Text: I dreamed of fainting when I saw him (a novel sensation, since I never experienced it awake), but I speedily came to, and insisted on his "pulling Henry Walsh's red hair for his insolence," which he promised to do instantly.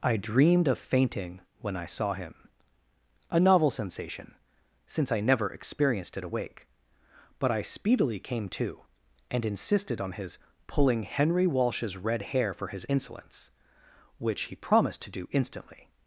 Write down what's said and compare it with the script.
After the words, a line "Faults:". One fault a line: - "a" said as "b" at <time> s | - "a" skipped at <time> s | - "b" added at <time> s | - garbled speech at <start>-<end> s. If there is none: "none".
I dreamed of fainting when I saw him (a novel sensation, since I never experienced it awake), but I speedily came to, and insisted on his "pulling Henry Walsh's red hair for his insolence," which he promised to do instantly.
Faults:
none